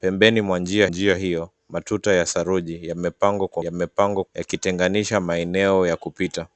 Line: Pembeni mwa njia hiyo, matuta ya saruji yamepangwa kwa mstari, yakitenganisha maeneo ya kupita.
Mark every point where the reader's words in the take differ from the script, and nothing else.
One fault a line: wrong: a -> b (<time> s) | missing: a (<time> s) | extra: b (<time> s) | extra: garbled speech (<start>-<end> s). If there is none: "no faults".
extra: njia (0.9 s)
wrong: mstari -> yamepangwa (3.6 s)